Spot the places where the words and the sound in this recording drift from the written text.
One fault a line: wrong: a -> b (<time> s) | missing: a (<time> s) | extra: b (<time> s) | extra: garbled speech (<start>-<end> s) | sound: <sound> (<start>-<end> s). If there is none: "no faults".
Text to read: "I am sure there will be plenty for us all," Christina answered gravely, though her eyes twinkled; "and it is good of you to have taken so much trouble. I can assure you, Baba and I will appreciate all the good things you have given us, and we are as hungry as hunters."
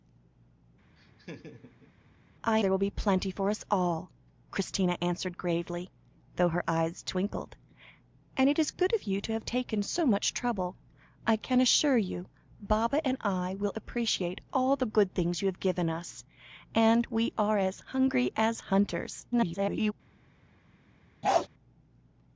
sound: laugh (1.0-1.9 s)
missing: am sure (2.6 s)
extra: garbled speech (19.3-19.9 s)
sound: bark (21.2-21.5 s)